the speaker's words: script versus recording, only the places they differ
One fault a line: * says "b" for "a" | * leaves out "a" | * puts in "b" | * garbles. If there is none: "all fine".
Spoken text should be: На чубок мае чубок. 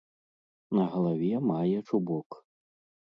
* says "галаве" for "чубок"